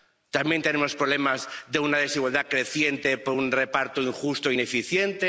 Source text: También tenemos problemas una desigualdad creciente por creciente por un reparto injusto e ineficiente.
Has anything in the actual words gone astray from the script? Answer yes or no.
yes